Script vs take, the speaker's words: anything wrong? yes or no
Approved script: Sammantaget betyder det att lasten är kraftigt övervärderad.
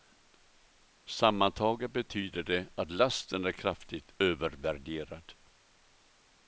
no